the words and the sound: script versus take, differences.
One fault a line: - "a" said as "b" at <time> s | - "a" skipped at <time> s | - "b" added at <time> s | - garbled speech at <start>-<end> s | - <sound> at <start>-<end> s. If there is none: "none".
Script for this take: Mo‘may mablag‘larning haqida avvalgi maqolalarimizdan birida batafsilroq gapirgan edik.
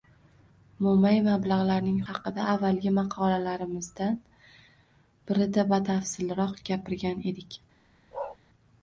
- bark at 8.1-8.4 s